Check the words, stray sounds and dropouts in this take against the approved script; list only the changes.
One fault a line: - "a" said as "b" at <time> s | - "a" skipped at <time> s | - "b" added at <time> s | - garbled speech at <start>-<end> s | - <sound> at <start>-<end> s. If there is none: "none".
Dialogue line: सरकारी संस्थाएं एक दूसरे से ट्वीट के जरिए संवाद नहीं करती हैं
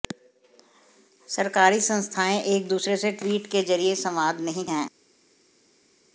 - "करती" skipped at 4.7 s